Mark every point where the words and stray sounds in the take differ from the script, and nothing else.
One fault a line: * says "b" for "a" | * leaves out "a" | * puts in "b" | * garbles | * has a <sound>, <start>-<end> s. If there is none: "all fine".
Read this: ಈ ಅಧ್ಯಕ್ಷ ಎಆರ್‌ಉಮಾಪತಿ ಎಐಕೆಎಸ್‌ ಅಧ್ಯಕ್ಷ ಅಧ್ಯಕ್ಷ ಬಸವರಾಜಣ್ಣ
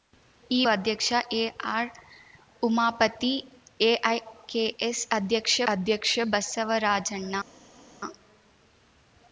all fine